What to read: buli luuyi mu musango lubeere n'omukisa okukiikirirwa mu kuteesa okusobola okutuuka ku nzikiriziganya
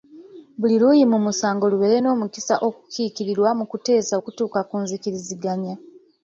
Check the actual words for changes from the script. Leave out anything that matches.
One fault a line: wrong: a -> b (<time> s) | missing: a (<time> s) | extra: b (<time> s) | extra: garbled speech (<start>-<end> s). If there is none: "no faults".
missing: okusobola (4.1 s)